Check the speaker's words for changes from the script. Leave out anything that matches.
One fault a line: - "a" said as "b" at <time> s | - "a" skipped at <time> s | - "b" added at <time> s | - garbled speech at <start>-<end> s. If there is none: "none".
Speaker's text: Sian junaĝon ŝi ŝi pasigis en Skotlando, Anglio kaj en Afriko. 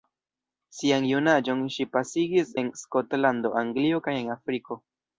- "ŝi" skipped at 1.9 s